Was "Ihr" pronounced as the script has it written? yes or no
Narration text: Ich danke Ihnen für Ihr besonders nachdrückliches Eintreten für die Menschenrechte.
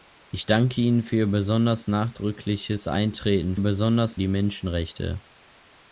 yes